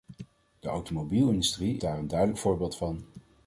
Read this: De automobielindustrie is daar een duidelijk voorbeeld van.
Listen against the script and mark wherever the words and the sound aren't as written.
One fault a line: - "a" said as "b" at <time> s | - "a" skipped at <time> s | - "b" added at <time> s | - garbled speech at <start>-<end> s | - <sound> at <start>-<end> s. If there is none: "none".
- "is" skipped at 1.8 s